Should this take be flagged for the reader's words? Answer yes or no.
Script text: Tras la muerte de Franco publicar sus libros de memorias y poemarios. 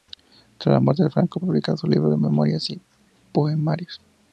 no